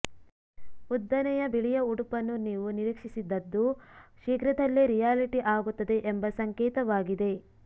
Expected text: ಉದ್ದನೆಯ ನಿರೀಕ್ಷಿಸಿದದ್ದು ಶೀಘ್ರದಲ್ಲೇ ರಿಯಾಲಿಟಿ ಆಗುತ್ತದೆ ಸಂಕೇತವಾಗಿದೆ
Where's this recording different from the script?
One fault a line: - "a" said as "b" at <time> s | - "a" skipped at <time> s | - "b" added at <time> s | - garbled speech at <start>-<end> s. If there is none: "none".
- "ಬಿಳಿಯ ಉಡುಪನ್ನು ನೀವು" added at 1.5 s
- "ಎಂಬ" added at 6.1 s